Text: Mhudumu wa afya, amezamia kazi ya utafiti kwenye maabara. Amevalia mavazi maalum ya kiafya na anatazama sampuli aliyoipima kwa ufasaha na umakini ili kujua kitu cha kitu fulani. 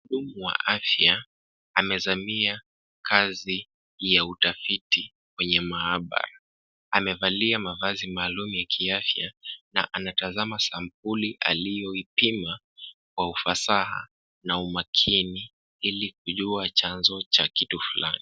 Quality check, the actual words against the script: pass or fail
fail